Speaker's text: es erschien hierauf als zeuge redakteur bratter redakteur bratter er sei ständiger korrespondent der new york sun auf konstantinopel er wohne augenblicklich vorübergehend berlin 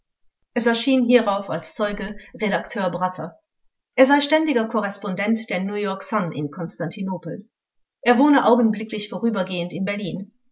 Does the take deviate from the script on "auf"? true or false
true